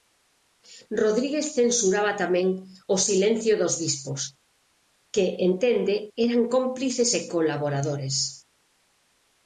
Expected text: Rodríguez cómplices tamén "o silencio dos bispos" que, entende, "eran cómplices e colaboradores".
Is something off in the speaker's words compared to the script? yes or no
yes